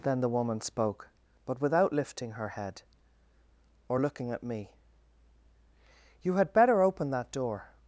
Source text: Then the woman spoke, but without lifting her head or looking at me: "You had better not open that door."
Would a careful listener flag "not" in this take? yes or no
yes